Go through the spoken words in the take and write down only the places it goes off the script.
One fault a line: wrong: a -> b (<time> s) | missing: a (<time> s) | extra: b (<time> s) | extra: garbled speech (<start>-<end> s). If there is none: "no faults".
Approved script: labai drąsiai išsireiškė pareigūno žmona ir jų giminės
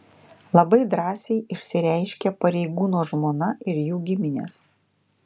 no faults